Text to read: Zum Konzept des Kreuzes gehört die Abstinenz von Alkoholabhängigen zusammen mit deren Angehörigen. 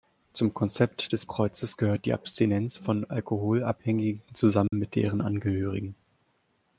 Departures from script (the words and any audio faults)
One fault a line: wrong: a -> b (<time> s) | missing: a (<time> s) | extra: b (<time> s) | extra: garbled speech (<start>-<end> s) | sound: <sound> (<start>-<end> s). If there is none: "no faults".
sound: dropout (4.7-4.7 s)